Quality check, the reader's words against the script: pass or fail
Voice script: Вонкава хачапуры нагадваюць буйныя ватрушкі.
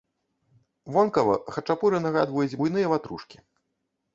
pass